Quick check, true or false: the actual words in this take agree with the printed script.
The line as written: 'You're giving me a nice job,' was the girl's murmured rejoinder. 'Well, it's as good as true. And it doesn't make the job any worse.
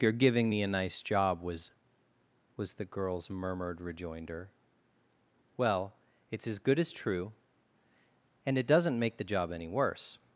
false